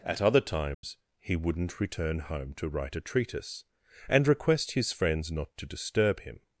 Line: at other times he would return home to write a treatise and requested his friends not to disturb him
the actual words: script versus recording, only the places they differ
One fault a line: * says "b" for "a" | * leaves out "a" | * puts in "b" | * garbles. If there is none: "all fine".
* says "wouldn't" for "would"
* says "request" for "requested"